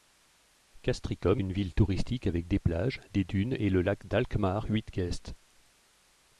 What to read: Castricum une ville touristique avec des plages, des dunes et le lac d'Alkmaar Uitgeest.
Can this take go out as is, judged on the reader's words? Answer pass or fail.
pass